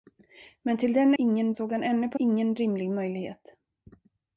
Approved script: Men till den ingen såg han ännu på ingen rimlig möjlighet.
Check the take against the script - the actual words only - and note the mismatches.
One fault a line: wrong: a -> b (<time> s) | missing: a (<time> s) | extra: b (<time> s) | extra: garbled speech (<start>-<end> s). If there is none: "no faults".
no faults